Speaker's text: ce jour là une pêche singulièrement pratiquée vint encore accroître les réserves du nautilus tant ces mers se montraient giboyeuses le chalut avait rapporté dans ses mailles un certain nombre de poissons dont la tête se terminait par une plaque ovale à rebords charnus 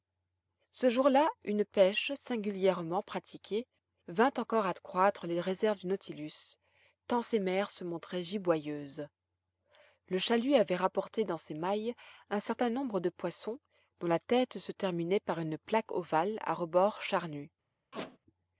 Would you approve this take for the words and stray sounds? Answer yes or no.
no